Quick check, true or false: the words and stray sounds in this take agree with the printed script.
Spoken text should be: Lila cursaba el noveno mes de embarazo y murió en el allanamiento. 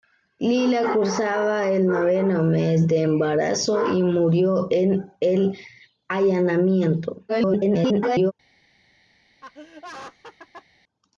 false